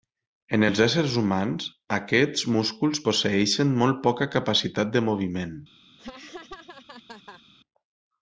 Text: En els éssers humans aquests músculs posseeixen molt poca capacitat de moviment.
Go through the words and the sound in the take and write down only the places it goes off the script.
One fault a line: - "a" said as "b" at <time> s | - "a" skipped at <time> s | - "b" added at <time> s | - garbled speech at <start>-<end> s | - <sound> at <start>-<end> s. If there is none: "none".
- laugh at 6.0-7.4 s